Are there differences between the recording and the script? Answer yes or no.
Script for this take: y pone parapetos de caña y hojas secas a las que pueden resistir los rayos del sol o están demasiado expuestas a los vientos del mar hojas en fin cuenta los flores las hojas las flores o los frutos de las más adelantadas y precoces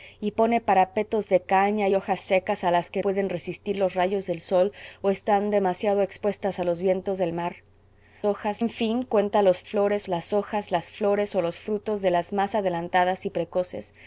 no